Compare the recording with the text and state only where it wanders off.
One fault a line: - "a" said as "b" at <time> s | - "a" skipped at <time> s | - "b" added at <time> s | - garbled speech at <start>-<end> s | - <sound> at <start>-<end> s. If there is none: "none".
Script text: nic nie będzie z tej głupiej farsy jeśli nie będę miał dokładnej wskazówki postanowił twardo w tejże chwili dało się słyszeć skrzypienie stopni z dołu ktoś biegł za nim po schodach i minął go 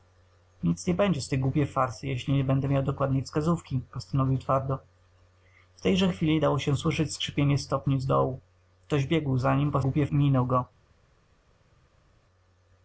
- "schodach" said as "głupiej" at 9.8 s